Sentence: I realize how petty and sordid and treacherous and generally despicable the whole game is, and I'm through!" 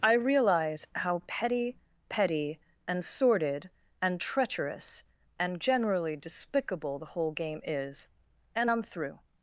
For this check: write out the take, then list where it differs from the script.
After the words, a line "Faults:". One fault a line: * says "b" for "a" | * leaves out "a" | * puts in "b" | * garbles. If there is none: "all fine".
I realize how petty petty and sordid and treacherous and generally despicable the whole game is, and I'm through!"
Faults:
* puts in "petty"